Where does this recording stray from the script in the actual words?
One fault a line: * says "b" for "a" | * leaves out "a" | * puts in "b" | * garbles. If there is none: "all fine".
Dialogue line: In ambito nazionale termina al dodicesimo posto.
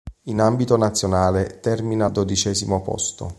all fine